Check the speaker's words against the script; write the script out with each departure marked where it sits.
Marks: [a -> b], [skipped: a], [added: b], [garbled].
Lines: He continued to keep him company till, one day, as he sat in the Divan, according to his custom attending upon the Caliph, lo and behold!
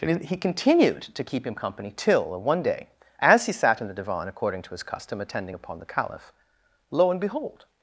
He continued to keep him company till, one day, as he sat in the Divan, according to his custom attending upon the Caliph, lo and behold!